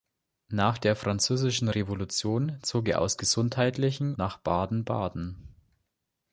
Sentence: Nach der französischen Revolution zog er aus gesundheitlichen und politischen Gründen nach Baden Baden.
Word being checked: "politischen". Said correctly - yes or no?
no